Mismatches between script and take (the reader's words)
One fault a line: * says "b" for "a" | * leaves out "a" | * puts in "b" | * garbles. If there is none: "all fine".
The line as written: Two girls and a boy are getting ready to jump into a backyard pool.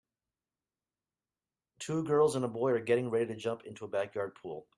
all fine